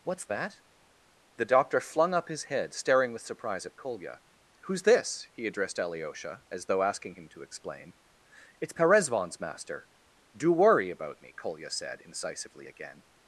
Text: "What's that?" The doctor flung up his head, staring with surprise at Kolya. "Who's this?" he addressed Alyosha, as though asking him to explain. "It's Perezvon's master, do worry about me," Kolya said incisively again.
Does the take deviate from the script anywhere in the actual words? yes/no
no